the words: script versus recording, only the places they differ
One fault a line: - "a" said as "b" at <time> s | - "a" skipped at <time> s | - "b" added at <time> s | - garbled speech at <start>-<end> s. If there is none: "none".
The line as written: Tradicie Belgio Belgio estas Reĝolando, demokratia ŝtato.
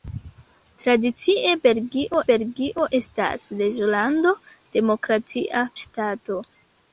none